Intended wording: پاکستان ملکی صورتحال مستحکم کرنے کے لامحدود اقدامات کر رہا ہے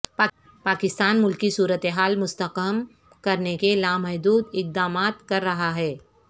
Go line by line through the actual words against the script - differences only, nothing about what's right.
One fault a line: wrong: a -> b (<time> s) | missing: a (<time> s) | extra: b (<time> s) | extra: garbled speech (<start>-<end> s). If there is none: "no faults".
no faults